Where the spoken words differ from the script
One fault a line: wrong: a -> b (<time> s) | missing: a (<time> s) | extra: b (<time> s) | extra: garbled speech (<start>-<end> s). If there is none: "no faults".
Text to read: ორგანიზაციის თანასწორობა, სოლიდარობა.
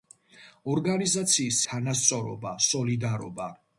no faults